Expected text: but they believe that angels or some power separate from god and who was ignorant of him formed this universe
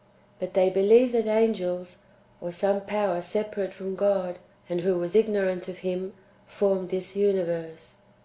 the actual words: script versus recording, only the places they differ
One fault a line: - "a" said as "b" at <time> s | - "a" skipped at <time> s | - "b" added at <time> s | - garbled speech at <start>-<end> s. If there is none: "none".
none